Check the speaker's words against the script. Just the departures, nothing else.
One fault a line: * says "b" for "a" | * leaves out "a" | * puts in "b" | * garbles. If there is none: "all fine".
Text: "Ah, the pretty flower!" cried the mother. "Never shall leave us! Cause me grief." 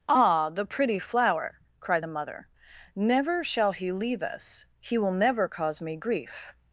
* puts in "he"
* puts in "He will never"